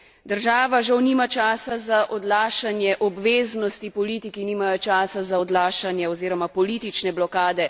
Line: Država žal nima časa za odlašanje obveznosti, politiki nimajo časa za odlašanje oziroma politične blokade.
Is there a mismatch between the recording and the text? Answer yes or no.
no